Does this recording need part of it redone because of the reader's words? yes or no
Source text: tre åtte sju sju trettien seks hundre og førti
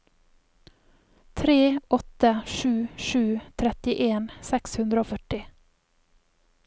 no